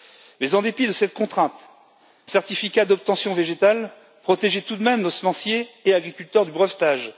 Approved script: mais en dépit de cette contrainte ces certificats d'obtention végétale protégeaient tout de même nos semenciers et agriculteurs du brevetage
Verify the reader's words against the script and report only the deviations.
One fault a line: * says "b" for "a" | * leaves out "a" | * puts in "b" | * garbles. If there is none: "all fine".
* leaves out "ces"